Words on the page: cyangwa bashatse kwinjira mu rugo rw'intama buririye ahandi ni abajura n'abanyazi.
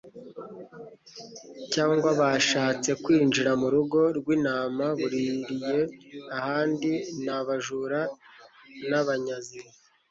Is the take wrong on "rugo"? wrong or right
right